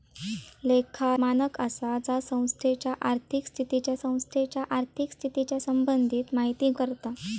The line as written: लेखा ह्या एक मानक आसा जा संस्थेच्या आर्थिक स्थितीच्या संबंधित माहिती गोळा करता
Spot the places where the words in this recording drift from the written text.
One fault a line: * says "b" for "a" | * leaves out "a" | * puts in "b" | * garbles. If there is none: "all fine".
* leaves out "ह्या एक"
* puts in "संस्थेच्या आर्थिक स्थितीच्या"
* leaves out "गोळा"